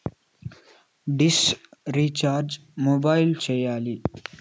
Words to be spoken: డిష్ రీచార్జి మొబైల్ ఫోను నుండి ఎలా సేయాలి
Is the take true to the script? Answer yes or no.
no